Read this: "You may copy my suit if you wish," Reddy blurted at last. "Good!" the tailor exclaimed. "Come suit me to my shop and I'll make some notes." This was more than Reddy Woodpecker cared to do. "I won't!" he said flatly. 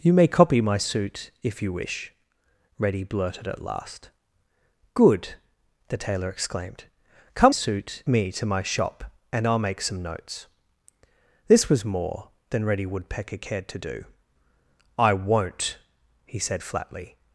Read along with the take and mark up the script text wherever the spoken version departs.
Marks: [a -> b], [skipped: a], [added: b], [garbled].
"You may copy my suit if you wish," Reddy blurted at last. "Good!" the tailor exclaimed. "Come suit me to my shop and I'll make some notes." This was more than Reddy Woodpecker cared to do. "I won't!" he said flatly.